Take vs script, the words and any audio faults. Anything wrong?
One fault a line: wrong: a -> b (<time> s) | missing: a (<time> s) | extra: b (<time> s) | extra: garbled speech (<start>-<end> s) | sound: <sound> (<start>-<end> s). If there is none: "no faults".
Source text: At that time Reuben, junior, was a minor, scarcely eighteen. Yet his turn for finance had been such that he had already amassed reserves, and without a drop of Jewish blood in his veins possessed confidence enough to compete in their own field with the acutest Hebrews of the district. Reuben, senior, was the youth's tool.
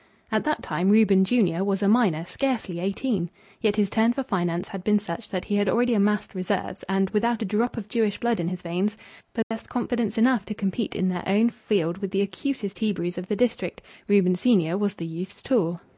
sound: dropout (9.4-9.5 s)